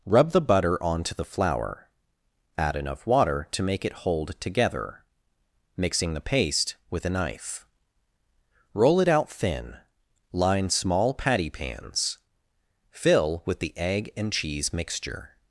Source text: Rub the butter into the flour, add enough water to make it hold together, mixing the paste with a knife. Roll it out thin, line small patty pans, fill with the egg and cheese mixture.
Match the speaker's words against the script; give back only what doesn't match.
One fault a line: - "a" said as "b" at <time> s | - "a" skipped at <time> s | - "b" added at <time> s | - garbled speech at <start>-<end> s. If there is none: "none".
- "into" said as "onto" at 0.8 s